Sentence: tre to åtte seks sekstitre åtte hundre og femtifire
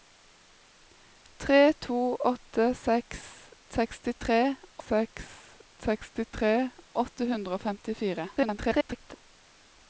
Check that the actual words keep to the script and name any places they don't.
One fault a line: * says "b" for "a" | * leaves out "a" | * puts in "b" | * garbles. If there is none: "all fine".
* puts in "seks sekstitre"
* garbles